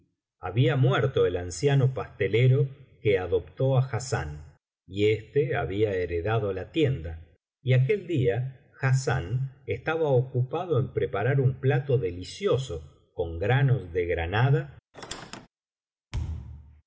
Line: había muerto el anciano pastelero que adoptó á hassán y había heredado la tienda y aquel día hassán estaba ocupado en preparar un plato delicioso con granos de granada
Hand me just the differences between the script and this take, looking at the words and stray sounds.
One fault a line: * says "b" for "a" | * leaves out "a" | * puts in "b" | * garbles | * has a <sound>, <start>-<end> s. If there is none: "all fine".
* puts in "éste"
* has a squeak, 14.9-15.5 s
* has a thud, 16.1-16.8 s